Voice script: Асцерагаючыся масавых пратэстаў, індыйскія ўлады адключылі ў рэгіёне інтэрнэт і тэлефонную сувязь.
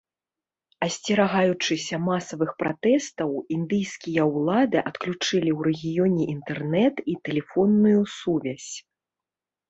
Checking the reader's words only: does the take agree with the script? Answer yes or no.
yes